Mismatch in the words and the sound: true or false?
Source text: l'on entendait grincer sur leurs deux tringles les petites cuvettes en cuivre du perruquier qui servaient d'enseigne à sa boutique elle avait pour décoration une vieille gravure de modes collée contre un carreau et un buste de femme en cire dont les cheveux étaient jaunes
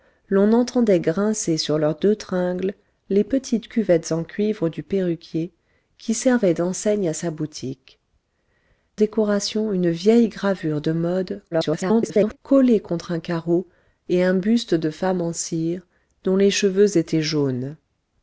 true